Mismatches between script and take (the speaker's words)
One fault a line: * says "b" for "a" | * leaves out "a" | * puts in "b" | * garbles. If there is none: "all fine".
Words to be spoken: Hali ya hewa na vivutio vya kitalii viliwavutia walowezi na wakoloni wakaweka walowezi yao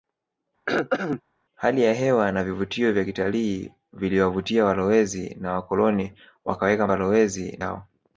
all fine